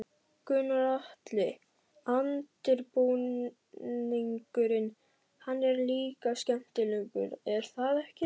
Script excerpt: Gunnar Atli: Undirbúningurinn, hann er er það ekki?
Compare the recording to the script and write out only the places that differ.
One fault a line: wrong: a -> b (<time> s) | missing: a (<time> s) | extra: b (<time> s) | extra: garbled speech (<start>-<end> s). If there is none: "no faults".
extra: líka skemmtilegur (5.9 s)